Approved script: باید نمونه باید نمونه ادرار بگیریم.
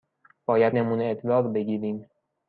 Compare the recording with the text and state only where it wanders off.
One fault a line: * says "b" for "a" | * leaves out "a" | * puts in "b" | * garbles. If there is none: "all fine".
* leaves out "باید نمونه"